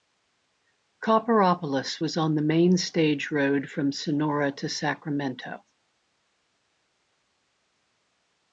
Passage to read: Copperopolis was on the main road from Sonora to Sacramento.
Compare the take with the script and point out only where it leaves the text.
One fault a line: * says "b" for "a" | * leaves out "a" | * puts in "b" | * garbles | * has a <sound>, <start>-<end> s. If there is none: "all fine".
* puts in "stage"